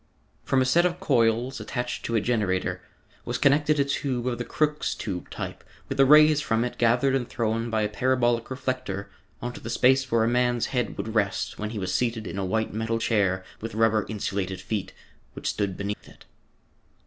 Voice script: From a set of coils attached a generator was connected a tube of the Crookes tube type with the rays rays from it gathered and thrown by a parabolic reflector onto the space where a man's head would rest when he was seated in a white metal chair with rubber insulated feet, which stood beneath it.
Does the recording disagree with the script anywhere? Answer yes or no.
yes